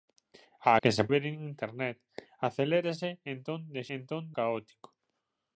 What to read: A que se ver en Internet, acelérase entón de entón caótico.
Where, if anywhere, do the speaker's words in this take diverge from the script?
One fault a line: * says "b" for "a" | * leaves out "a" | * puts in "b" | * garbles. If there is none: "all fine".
all fine